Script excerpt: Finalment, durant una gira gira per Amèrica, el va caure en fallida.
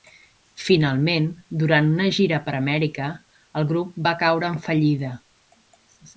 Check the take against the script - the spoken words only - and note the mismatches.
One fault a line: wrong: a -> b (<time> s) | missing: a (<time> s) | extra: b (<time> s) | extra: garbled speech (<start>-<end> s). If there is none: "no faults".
missing: gira (2.4 s)
extra: grup (3.7 s)